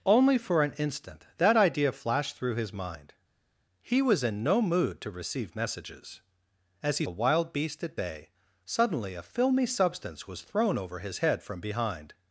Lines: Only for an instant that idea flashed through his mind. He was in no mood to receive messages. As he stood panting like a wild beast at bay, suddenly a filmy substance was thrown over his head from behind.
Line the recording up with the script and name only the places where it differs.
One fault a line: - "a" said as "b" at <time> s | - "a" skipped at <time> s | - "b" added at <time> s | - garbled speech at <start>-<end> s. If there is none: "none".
- "stood panting like" skipped at 7.1 s